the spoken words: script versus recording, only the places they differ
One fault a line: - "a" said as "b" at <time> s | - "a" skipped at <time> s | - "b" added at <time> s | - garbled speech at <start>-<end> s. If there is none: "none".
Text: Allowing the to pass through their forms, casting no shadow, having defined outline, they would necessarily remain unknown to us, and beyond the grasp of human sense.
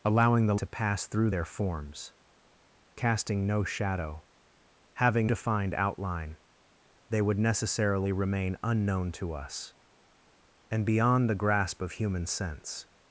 none